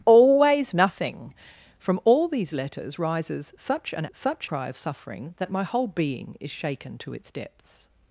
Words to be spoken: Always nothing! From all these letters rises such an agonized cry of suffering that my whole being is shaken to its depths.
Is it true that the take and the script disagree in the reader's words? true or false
true